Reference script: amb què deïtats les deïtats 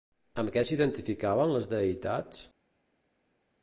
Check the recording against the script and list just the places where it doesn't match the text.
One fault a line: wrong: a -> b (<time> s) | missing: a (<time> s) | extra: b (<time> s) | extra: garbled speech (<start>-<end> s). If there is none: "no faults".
wrong: deïtats -> s'identificaven (0.7 s)